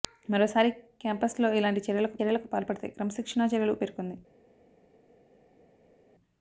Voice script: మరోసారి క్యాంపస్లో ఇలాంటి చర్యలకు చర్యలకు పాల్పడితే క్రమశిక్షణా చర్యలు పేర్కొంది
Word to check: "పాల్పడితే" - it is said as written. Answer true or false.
true